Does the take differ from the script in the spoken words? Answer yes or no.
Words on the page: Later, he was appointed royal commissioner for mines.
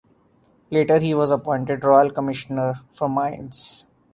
no